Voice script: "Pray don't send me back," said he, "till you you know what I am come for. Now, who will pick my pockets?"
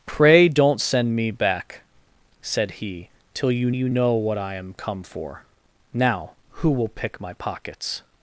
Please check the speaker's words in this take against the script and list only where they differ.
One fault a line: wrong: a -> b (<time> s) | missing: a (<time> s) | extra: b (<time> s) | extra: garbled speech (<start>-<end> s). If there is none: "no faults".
no faults